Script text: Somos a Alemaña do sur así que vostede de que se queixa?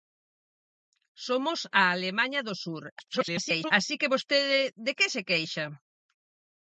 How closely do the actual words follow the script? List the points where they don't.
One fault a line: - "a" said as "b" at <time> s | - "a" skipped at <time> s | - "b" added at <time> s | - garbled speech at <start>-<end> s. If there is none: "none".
- garbled speech at 3.0-3.7 s